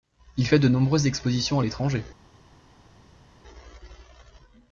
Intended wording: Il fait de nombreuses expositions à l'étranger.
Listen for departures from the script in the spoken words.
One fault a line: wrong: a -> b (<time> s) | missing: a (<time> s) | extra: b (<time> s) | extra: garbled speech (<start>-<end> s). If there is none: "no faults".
no faults